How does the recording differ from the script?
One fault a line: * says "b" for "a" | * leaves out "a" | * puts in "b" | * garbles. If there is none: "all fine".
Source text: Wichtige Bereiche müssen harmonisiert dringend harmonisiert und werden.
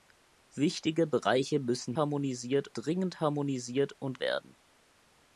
all fine